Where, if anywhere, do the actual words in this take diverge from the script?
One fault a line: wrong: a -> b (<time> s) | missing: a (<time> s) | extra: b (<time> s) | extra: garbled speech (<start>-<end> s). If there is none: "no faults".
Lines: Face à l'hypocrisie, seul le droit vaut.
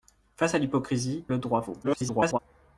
missing: seul (1.2 s)
extra: garbled speech (1.8-2.4 s)